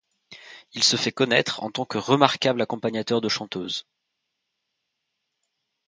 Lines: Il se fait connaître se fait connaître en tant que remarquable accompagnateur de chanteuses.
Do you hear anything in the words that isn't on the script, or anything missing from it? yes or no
yes